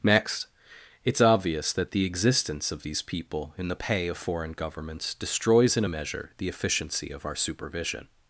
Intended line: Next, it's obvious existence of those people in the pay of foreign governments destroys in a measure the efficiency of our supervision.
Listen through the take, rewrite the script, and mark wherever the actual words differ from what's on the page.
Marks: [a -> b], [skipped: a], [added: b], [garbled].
Next, it's obvious [added: that the] existence of [those -> these] people in the pay of foreign governments destroys in a measure the efficiency of our supervision.